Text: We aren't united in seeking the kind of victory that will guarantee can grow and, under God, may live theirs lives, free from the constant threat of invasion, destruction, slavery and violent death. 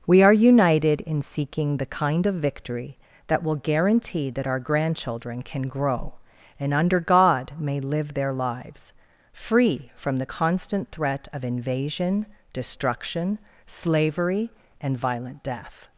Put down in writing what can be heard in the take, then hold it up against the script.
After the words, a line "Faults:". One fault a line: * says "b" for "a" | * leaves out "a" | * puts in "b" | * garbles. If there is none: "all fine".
We are united in seeking the kind of victory that will guarantee that our grandchildren can grow and, under God, may live their lives, free from the constant threat of invasion, destruction, slavery and violent death.
Faults:
* says "are" for "aren't"
* puts in "that our grandchildren"
* says "their" for "theirs"